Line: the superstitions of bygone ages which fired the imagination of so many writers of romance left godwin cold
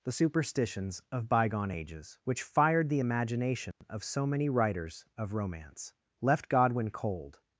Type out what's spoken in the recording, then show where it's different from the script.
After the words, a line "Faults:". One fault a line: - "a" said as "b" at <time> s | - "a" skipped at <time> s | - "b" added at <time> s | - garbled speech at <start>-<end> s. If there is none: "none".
the superstitions of bygone ages which fired the imagination of so many writers of romance left godwin cold
Faults:
none